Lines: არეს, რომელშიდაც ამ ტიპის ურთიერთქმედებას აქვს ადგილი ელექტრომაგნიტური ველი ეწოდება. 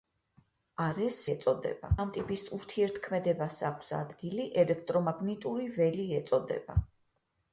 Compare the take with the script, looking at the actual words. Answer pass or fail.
fail